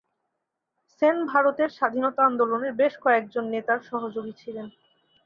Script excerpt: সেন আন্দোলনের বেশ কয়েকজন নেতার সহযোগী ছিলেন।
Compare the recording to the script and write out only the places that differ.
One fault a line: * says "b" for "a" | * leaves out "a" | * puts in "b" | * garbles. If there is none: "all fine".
* puts in "ভারতের স্বাধীনতা"